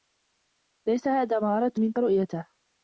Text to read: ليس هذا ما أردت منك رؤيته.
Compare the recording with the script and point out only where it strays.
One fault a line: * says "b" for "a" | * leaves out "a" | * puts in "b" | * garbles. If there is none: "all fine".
all fine